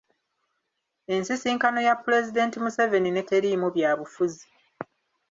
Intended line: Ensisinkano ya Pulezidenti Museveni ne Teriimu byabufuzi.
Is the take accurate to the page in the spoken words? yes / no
yes